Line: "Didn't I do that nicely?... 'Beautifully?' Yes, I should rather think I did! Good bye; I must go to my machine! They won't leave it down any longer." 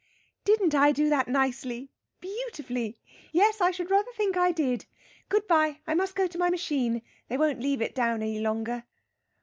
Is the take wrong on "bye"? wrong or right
right